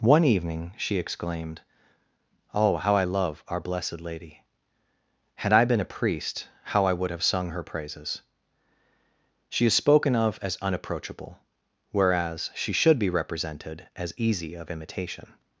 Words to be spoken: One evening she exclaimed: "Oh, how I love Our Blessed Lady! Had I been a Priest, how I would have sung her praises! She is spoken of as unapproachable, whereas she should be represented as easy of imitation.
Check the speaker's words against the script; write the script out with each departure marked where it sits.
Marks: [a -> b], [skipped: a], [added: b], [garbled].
One evening she exclaimed: "Oh, how I love Our Blessed Lady! Had I been a Priest, how I would have sung her praises! She is spoken of as unapproachable, whereas she should be represented as easy of imitation.